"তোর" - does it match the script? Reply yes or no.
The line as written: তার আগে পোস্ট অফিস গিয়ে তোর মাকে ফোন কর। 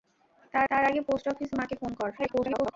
no